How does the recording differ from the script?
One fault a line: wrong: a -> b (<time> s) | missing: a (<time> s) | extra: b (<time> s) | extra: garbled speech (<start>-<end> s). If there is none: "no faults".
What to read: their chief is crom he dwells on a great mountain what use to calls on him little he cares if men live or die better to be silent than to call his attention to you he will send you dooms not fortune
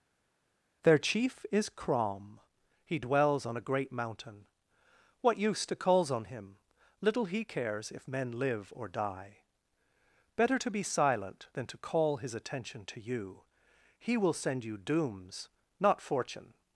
no faults